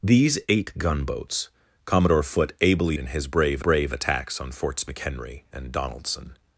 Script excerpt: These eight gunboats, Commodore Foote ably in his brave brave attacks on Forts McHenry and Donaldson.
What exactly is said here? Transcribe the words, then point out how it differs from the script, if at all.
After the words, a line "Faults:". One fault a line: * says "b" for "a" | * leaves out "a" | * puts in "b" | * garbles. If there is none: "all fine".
These eight gunboats, Commodore Foote ably in his brave brave attacks on Forts McHenry and Donaldson.
Faults:
all fine